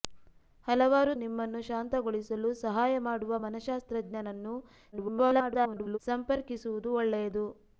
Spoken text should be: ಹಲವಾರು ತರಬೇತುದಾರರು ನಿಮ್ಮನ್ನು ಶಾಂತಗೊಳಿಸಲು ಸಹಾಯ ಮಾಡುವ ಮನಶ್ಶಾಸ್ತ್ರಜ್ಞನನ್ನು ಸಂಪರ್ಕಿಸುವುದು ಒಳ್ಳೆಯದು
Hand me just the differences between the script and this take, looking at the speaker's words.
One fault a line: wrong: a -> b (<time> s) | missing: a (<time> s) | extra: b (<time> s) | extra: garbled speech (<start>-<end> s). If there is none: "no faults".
missing: ತರಬೇತುದಾರರು (1.1 s)
extra: garbled speech (4.9-6.0 s)